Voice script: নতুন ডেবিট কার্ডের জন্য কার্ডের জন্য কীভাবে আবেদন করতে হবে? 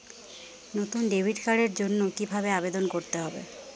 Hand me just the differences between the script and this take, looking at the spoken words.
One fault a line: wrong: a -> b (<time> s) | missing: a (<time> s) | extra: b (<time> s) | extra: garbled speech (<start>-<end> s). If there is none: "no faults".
missing: কার্ডের জন্য (2.0 s)